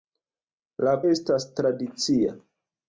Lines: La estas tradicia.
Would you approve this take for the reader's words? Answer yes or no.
yes